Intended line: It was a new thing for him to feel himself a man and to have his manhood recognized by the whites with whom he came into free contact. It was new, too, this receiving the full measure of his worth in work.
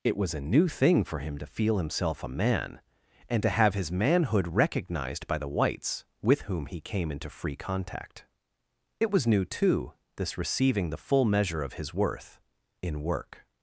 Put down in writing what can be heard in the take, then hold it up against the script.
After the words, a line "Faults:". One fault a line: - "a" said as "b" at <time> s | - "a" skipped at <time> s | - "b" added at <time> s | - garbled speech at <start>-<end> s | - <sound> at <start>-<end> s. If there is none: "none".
It was a new thing for him to feel himself a man and to have his manhood recognized by the whites with whom he came into free contact. It was new, too, this receiving the full measure of his worth in work.
Faults:
none